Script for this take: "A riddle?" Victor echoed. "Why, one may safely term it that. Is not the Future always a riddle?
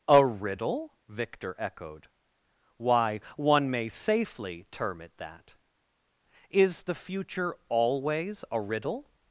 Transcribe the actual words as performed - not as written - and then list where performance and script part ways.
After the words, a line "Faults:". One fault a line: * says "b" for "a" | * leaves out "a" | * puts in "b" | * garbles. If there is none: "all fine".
"A riddle?" Victor echoed. "Why, one may safely term it that. Is the Future always a riddle?
Faults:
* leaves out "not"